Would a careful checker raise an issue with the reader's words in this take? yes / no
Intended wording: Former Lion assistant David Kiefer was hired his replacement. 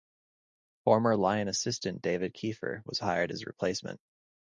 no